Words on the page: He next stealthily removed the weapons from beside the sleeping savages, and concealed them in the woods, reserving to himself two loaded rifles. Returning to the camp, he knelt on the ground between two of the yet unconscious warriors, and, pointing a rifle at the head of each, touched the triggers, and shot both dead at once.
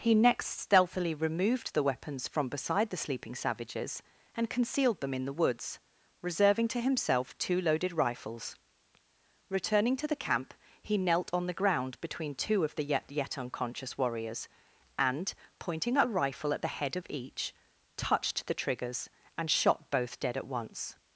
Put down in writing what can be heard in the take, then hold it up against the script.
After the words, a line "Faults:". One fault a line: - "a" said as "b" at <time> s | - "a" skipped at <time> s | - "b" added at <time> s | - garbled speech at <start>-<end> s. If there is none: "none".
He next stealthily removed the weapons from beside the sleeping savages, and concealed them in the woods, reserving to himself two loaded rifles. Returning to the camp, he knelt on the ground between two of the yet yet unconscious warriors, and, pointing a rifle at the head of each, touched the triggers, and shot both dead at once.
Faults:
- "yet" added at 13.1 s